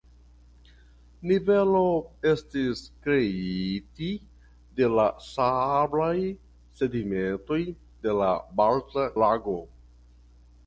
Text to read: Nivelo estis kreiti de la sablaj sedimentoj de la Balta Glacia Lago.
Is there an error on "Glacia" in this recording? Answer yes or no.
yes